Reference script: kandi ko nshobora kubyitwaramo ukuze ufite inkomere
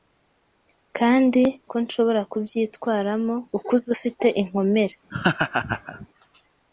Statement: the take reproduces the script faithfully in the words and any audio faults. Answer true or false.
false